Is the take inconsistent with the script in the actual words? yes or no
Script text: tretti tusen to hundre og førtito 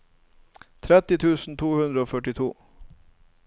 no